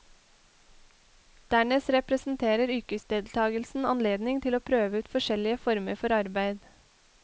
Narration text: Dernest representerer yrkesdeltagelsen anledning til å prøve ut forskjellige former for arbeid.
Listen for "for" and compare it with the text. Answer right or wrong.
right